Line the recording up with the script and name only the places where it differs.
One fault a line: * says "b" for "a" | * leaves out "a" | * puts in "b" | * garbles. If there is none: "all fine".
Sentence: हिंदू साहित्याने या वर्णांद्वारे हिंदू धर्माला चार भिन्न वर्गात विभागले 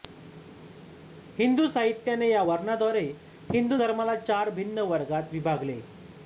all fine